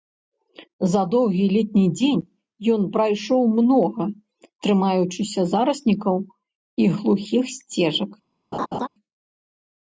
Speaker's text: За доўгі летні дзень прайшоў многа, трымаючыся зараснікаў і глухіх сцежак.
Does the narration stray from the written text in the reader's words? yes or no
yes